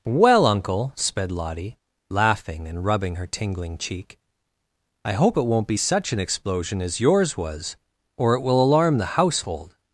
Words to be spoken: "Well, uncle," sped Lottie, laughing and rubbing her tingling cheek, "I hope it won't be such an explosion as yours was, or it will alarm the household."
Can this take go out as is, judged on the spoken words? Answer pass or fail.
pass